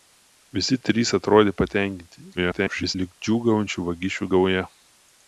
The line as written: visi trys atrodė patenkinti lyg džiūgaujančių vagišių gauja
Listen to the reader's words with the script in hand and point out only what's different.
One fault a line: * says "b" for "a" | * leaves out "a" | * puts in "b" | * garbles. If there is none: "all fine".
* garbles